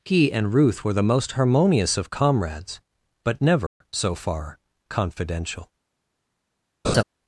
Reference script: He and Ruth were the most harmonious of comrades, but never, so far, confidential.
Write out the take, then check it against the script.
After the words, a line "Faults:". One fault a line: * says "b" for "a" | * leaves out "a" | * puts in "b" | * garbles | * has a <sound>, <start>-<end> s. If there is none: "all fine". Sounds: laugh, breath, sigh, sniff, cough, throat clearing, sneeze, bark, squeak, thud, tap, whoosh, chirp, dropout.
He and Ruth were the most harmonious of comrades, but never, so far, confidential.
Faults:
* has a dropout, 3.7-3.8 s
* has a laugh, 6.8-7.0 s